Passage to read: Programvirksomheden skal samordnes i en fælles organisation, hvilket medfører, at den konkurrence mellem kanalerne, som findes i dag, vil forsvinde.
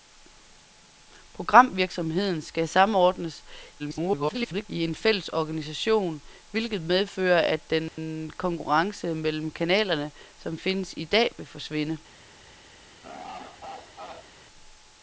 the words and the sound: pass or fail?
fail